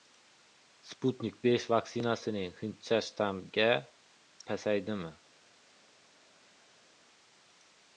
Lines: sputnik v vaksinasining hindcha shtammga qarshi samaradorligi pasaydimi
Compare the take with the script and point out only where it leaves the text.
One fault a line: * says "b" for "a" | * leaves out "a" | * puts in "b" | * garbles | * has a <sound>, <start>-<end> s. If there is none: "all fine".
* leaves out "qarshi samaradorligi"